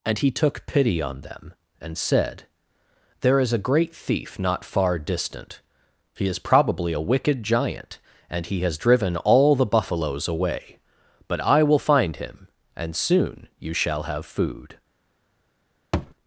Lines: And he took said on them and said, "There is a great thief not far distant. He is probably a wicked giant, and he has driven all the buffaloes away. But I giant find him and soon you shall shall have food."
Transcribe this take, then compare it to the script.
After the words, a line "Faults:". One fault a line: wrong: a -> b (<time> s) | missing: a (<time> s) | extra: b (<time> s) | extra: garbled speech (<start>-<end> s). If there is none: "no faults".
And he took pity on them and said, "There is a great thief not far distant. He is probably a wicked giant, and he has driven all the buffaloes away. But I will find him and soon you shall have food."
Faults:
wrong: said -> pity (0.7 s)
wrong: giant -> will (11.6 s)
missing: shall (14.0 s)